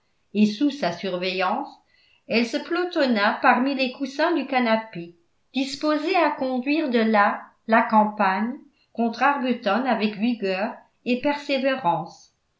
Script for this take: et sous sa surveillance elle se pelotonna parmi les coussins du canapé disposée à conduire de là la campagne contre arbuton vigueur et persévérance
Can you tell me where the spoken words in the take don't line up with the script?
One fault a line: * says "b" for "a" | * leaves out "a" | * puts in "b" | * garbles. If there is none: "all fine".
* puts in "avec"